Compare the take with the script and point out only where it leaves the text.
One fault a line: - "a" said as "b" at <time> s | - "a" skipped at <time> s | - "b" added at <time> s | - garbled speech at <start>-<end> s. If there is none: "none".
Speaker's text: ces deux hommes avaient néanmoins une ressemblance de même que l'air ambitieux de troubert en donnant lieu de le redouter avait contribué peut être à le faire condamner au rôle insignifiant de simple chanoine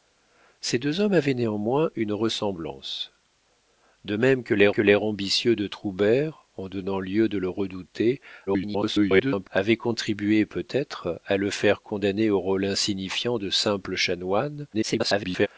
- "que l'air" added at 4.7 s
- garbled speech at 8.5-9.5 s
- garbled speech at 14.7-15.5 s